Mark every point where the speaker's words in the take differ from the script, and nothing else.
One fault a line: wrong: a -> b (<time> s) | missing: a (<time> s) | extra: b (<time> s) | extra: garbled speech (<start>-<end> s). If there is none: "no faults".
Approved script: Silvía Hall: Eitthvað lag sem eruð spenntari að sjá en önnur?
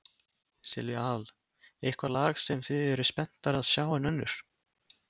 extra: þið (2.7 s)